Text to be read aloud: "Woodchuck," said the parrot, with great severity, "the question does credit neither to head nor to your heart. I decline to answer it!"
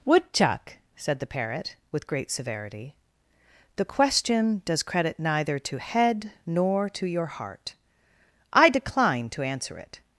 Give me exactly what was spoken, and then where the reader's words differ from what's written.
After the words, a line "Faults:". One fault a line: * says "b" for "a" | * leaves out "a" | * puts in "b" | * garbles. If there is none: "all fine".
"Woodchuck," said the parrot, with great severity, "the question does credit neither to head nor to your heart. I decline to answer it!"
Faults:
all fine